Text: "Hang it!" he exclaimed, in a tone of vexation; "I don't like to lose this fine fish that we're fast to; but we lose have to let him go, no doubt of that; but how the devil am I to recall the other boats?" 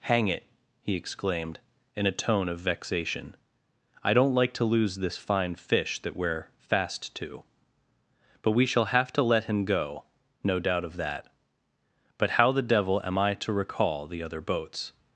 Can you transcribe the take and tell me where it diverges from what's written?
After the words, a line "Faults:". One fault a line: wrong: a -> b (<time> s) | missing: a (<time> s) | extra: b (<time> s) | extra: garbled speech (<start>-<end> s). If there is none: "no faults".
"Hang it!" he exclaimed, in a tone of vexation; "I don't like to lose this fine fish that we're fast to; but we shall have to let him go, no doubt of that; but how the devil am I to recall the other boats?"
Faults:
wrong: lose -> shall (8.7 s)